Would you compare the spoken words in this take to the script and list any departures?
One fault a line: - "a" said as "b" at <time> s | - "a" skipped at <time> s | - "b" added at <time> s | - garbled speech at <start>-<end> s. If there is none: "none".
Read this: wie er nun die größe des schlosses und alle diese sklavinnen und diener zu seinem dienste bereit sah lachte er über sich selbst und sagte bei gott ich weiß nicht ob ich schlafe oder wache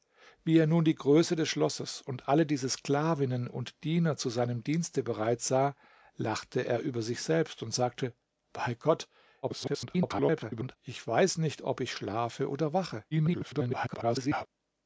- garbled speech at 9.4-10.8 s
- garbled speech at 13.1-14.5 s